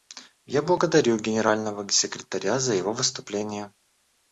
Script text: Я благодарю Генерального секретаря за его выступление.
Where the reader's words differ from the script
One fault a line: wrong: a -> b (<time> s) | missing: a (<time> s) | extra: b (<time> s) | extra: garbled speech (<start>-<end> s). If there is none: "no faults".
no faults